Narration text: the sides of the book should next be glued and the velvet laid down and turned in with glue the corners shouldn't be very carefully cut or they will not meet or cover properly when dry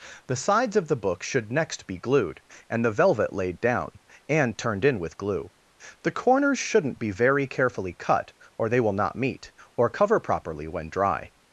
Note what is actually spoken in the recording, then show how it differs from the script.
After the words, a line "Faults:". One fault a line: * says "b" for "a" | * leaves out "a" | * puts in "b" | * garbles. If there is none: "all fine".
the sides of the book should next be glued and the velvet laid down and turned in with glue the corners shouldn't be very carefully cut or they will not meet or cover properly when dry
Faults:
all fine